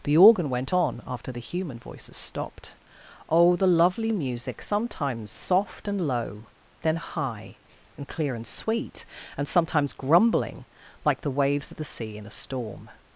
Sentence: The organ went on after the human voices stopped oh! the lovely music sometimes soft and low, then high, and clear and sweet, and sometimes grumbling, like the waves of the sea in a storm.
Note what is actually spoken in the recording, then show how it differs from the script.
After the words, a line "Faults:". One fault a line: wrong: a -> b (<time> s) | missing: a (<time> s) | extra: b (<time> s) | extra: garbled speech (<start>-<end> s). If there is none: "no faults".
The organ went on after the human voices stopped oh! the lovely music sometimes soft and low, then high, and clear and sweet, and sometimes grumbling, like the waves of the sea in a storm.
Faults:
no faults